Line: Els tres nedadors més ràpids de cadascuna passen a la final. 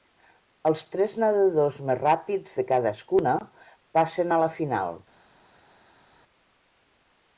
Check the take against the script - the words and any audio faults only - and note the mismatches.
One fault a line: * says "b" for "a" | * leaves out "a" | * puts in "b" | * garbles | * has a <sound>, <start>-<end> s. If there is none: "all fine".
all fine